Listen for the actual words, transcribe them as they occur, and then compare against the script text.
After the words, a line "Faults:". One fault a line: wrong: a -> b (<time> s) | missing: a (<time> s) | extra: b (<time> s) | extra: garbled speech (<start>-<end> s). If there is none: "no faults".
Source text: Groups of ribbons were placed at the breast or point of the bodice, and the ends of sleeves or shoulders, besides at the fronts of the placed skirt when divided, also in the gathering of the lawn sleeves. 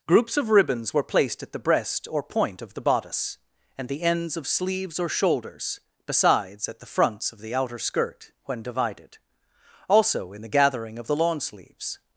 Groups of ribbons were placed at the breast or point of the bodice, and the ends of sleeves or shoulders, besides at the fronts of the outer skirt when divided, also in the gathering of the lawn sleeves.
Faults:
wrong: placed -> outer (7.5 s)